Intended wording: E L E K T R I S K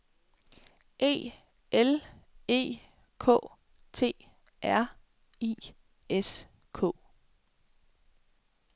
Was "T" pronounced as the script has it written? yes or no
yes